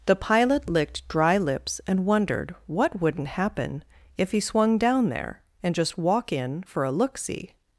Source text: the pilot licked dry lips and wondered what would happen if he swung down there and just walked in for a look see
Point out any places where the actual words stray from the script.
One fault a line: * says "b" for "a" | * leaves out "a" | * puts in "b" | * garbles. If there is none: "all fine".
* says "wouldn't" for "would"
* says "walk" for "walked"